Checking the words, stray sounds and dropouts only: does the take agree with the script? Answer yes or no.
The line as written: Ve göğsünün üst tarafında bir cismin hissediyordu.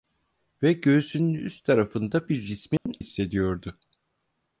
no